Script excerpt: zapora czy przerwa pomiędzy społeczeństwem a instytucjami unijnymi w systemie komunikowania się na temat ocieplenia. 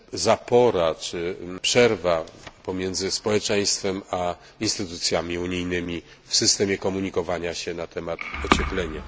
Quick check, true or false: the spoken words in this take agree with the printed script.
true